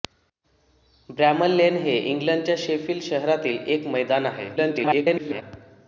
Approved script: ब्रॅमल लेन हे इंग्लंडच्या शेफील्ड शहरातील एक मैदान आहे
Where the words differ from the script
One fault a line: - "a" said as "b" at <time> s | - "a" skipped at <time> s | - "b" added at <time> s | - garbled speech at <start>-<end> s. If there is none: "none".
- garbled speech at 4.6-5.4 s